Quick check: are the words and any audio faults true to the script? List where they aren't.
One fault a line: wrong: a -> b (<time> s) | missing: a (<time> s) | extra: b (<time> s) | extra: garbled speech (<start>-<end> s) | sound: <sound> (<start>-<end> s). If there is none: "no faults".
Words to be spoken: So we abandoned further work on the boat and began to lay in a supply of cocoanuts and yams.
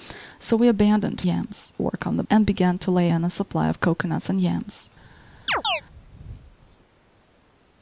wrong: further -> yams (1.2 s)
missing: boat (2.2 s)
sound: chirp (5.5-5.8 s)